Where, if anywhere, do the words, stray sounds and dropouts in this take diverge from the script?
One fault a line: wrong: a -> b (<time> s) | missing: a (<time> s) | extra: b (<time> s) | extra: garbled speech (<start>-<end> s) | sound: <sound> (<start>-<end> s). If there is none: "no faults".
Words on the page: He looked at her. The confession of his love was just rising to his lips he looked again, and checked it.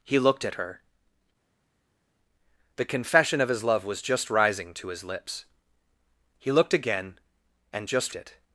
wrong: checked -> just (7.9 s)